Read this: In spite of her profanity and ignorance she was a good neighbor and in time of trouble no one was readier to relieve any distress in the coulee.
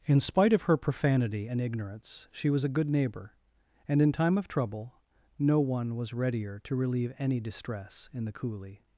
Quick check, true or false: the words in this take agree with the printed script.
true